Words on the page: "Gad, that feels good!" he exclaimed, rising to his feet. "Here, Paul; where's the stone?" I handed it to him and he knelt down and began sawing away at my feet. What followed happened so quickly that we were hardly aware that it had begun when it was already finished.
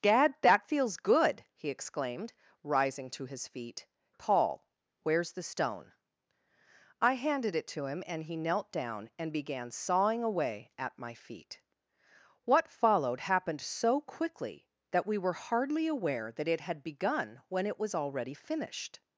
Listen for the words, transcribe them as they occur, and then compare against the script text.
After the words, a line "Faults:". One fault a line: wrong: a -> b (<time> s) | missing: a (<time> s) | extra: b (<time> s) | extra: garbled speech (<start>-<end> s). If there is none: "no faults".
"Gad, that feels good!" he exclaimed, rising to his feet. "Paul; where's the stone?" I handed it to him and he knelt down and began sawing away at my feet. What followed happened so quickly that we were hardly aware that it had begun when it was already finished.
Faults:
missing: Here (3.9 s)